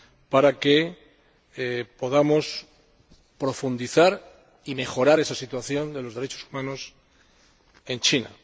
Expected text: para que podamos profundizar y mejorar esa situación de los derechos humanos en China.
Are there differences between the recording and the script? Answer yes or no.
no